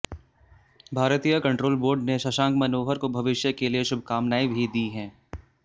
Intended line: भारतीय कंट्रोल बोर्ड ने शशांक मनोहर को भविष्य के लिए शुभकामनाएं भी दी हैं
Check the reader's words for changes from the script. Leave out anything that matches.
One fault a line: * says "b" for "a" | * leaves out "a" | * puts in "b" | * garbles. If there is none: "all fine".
all fine